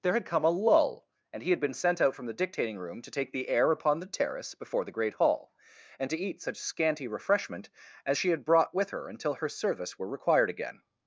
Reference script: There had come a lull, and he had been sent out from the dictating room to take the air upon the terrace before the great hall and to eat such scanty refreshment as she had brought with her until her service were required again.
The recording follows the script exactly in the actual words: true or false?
true